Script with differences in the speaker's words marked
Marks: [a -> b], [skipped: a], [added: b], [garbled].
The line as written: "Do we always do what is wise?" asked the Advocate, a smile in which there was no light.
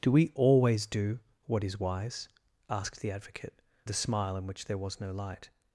"Do we always do what is wise?" asked the Advocate, a smile in which there was no light.